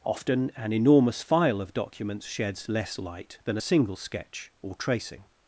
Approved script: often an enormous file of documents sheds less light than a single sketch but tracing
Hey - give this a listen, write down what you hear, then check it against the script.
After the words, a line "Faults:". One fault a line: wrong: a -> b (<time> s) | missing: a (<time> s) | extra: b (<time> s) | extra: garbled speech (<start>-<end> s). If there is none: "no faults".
often an enormous file of documents sheds less light than a single sketch or tracing
Faults:
wrong: but -> or (4.6 s)